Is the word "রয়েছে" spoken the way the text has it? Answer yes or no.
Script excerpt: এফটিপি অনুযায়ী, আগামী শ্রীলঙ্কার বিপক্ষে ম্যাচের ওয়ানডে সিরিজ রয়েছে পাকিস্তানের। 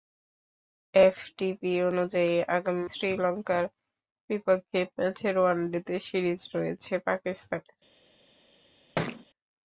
yes